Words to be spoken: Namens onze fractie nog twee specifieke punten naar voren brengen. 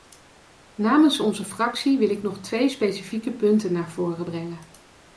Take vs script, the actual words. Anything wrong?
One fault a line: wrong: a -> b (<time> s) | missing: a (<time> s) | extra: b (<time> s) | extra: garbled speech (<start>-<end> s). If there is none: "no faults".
extra: wil ik (2.0 s)